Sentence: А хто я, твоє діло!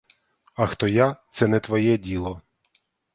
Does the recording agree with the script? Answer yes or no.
no